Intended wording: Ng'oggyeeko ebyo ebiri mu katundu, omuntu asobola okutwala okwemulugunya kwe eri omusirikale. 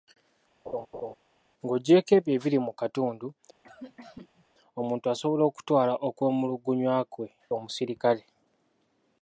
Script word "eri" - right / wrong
wrong